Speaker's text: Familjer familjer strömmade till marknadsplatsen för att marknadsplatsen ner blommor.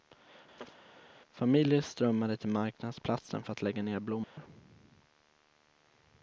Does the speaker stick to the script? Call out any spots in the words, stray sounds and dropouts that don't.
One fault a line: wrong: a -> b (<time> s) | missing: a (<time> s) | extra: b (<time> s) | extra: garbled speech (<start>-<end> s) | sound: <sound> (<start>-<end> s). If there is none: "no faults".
sound: chirp (0.6-0.8 s)
missing: familjer (1.8 s)
wrong: marknadsplatsen -> lägga (3.6 s)
sound: dropout (4.2-4.4 s)